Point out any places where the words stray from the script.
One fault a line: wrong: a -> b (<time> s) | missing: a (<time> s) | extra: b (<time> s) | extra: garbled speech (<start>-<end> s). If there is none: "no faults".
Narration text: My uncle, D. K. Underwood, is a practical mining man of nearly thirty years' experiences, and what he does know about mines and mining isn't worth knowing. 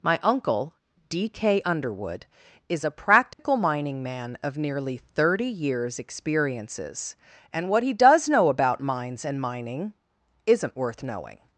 no faults